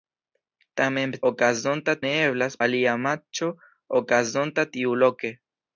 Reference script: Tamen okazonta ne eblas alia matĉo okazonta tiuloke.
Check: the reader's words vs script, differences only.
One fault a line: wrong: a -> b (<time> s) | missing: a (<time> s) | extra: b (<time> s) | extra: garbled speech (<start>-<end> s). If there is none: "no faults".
no faults